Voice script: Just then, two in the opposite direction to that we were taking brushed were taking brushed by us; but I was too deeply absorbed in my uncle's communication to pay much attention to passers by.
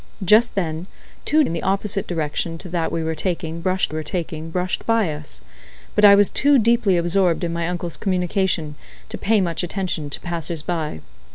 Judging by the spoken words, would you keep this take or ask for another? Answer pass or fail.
pass